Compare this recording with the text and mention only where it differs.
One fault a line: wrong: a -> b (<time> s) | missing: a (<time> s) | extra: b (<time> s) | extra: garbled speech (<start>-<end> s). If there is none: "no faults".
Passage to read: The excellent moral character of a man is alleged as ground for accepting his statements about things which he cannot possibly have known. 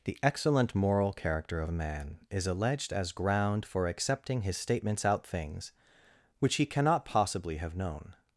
wrong: about -> out (5.0 s)